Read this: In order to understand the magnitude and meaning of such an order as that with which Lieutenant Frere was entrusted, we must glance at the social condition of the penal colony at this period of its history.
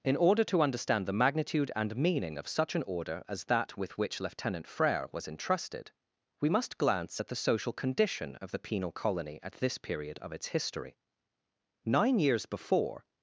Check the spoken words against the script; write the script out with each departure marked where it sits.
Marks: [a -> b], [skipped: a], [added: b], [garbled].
In order to understand the magnitude and meaning of such an order as that with which Lieutenant Frere was entrusted, we must glance at the social condition of the penal colony at this period of its history. [added: Nine years before]